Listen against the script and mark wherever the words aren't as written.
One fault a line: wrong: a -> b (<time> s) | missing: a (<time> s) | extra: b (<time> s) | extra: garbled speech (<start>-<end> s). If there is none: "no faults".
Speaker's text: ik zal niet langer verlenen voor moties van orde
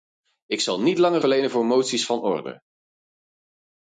no faults